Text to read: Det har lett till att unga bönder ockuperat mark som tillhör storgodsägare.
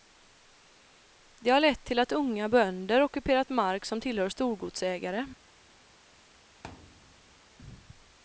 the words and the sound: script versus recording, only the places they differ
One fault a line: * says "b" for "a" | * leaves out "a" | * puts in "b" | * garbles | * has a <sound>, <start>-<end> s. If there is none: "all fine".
* has a thud, 6.6-7.4 s